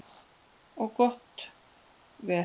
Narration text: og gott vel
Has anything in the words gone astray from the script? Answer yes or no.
no